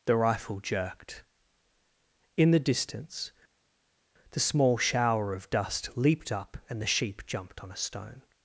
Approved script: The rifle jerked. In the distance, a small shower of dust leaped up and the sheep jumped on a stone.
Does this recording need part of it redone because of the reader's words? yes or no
yes